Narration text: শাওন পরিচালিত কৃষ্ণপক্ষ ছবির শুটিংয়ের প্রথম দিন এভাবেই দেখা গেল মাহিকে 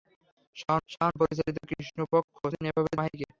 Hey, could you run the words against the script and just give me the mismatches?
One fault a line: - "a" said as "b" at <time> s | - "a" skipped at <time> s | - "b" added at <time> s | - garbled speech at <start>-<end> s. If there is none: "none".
- "শাওন" added at 0.9 s
- "ছবির শুটিংয়ের প্রথম" skipped at 2.4 s
- "দেখা গেল" skipped at 3.0 s